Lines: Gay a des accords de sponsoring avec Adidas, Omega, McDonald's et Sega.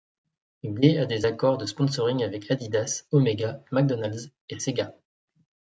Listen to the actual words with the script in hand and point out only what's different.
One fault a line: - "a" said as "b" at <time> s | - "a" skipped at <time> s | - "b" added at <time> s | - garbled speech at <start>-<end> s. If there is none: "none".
none